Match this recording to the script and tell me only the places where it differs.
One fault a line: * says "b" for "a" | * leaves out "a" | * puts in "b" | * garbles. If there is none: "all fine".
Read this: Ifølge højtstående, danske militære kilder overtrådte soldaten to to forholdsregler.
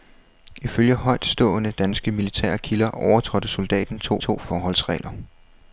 all fine